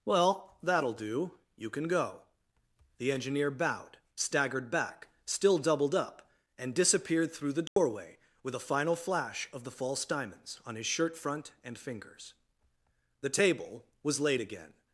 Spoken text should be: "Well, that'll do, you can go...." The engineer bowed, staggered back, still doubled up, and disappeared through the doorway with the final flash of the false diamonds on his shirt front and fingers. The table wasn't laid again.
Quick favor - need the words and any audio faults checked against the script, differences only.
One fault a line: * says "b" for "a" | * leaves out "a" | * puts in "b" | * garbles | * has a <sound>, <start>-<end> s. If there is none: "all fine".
* has a dropout, 7.7-7.8 s
* says "a" for "the"
* says "was" for "wasn't"